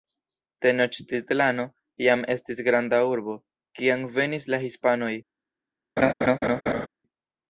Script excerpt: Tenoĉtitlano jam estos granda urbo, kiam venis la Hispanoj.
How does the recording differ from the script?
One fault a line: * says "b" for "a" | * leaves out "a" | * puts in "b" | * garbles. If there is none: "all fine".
* says "estis" for "estos"